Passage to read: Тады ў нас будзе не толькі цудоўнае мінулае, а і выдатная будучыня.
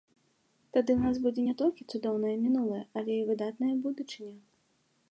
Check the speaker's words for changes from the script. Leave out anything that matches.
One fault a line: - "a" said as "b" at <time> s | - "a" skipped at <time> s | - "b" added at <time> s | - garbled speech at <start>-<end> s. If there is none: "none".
- "а" said as "але" at 3.0 s